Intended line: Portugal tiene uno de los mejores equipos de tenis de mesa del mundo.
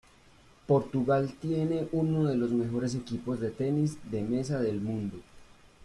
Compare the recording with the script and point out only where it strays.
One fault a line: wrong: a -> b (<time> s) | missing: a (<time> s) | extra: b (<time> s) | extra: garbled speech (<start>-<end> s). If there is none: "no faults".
no faults